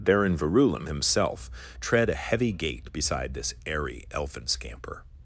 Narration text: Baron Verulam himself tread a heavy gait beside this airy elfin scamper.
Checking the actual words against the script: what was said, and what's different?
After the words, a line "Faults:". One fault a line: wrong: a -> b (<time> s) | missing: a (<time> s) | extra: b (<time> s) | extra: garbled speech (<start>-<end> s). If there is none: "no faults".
Baron Verulam himself tread a heavy gait beside this airy elfin scamper.
Faults:
no faults